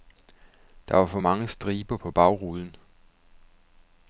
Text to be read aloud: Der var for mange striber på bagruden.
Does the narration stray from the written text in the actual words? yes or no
no